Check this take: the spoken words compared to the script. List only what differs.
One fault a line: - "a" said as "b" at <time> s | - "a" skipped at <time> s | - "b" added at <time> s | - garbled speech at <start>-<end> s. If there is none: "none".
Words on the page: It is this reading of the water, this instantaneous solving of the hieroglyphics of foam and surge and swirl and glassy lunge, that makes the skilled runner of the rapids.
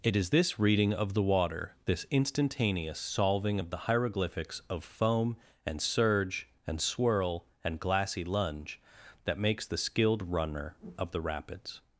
none